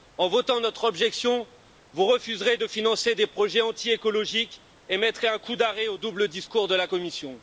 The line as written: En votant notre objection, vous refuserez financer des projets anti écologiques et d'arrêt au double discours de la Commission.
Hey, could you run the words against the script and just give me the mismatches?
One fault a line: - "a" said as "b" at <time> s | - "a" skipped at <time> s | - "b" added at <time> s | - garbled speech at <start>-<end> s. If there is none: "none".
- "de" added at 2.6 s
- "mettrez un coup" added at 5.0 s